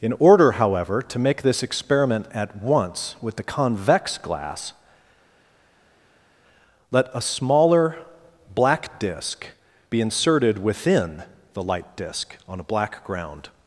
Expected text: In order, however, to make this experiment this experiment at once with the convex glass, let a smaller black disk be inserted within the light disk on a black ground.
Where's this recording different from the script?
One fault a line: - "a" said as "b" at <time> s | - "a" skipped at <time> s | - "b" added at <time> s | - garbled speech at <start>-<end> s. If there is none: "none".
- "this experiment" skipped at 2.2 s